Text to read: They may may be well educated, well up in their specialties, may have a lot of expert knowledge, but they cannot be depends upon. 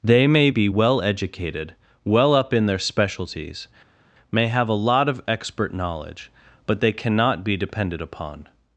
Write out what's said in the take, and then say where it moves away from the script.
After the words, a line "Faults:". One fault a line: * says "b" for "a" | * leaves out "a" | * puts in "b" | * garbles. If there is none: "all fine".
They may be well educated, well up in their specialties, may have a lot of expert knowledge, but they cannot be depended upon.
Faults:
* leaves out "may"
* says "depended" for "depends"